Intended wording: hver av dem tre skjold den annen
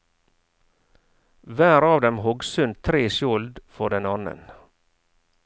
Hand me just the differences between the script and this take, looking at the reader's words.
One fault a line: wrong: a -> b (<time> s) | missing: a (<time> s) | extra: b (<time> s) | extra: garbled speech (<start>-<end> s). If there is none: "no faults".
extra: hogg sund (2.2 s)
extra: for (3.8 s)